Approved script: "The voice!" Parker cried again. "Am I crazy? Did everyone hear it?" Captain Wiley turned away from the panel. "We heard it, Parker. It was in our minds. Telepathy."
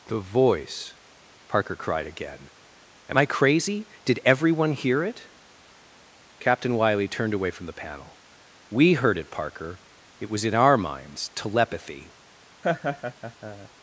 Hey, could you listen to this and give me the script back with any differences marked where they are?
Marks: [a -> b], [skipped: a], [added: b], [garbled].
"The voice!" Parker cried again. "Am I crazy? Did everyone hear it?" Captain Wiley turned away from the panel. "We heard it, Parker. It was in our minds. Telepathy."